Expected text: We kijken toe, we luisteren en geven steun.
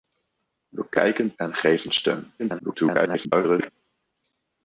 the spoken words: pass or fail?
fail